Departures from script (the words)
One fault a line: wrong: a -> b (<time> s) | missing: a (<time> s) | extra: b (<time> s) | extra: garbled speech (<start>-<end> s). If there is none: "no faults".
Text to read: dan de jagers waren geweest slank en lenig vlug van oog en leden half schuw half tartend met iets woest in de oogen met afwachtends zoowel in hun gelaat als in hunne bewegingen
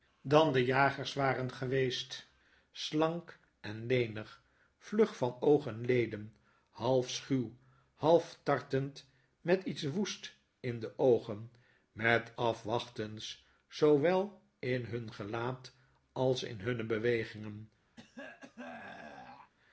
no faults